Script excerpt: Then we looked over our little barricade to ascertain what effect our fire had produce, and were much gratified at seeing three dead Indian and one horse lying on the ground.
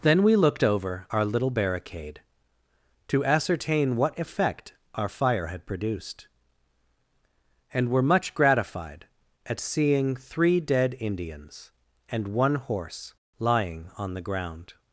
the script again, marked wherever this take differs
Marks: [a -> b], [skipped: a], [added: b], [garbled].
Then we looked over our little barricade to ascertain what effect our fire had [produce, -> produced] and were much gratified at seeing three dead [Indian -> Indians] and one horse lying on the ground.